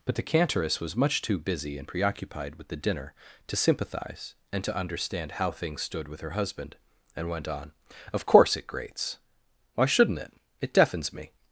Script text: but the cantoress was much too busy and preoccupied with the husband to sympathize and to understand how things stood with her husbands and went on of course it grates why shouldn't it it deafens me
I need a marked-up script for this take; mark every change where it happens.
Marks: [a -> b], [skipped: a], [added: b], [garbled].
but the cantoress was much too busy and preoccupied with the [husband -> dinner] to sympathize and to understand how things stood with her [husbands -> husband] and went on of course it grates why shouldn't it it deafens me